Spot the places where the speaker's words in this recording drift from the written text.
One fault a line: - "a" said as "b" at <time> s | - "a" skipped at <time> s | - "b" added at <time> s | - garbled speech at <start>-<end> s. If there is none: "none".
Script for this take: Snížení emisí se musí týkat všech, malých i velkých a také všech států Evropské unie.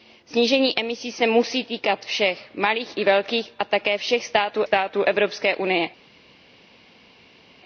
- "států" added at 4.6 s